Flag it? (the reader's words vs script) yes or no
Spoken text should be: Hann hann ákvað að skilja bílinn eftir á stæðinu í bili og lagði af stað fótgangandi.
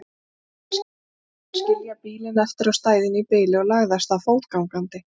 no